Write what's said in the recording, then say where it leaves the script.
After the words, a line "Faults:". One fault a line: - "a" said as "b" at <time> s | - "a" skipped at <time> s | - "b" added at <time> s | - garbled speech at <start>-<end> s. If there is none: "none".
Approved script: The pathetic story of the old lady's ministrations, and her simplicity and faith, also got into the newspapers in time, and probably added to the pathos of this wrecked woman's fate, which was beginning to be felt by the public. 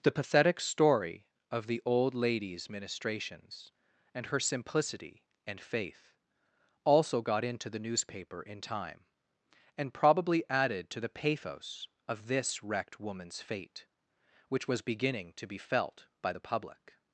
The pathetic story of the old lady's ministrations, and her simplicity and faith, also got into the newspaper in time, and probably added to the pathos of this wrecked woman's fate, which was beginning to be felt by the public.
Faults:
- "newspapers" said as "newspaper" at 7.8 s